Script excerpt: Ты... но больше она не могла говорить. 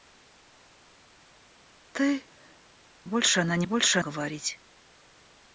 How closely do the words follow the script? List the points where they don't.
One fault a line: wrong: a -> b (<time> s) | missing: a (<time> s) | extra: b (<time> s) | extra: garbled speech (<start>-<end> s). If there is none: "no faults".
missing: но (2.2 s)
wrong: могла -> больше (3.6 s)